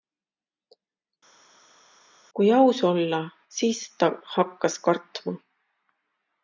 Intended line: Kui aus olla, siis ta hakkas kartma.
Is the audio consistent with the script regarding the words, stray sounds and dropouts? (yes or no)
yes